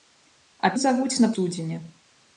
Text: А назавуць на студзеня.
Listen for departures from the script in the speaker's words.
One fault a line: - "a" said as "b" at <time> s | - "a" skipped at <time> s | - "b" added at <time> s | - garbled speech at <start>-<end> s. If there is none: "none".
none